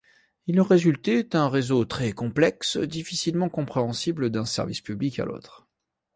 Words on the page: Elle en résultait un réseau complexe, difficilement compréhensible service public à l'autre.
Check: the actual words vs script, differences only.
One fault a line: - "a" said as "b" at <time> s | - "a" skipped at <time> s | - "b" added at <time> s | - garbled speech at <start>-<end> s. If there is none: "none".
- "Elle" said as "Il" at 0.5 s
- "très" added at 1.9 s
- "d'un" added at 4.3 s